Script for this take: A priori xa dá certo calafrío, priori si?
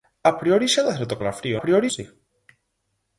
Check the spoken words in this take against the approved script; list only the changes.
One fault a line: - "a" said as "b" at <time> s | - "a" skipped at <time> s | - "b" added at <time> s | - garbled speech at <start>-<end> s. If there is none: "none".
none